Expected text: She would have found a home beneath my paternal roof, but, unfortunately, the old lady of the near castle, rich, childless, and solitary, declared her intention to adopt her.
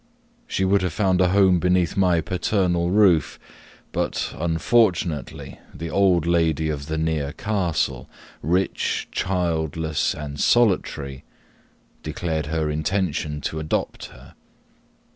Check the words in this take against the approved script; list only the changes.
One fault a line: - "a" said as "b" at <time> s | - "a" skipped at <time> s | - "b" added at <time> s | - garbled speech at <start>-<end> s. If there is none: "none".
none